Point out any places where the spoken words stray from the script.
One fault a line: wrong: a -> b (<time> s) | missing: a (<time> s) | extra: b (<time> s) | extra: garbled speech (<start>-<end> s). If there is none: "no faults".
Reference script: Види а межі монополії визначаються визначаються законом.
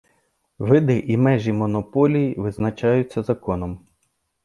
wrong: а -> і (1.0 s)
missing: визначаються (3.2 s)